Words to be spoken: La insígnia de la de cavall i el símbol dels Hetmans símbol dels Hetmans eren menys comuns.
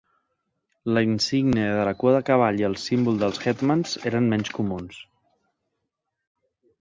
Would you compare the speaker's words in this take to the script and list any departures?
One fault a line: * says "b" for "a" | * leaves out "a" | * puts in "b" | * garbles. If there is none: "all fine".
* puts in "cua"
* leaves out "símbol dels Hetmans"